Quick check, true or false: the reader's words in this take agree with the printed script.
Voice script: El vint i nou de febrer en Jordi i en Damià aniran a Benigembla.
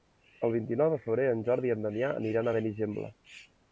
true